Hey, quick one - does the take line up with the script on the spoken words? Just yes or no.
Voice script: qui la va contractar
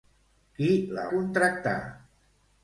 no